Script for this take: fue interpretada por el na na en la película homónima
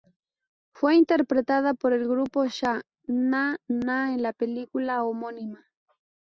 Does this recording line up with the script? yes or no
no